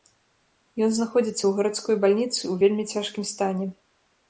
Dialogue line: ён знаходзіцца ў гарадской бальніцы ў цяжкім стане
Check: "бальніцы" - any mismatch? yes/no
no